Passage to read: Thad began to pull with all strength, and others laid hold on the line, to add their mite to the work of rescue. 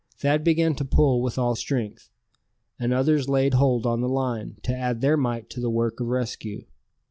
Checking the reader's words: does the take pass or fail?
pass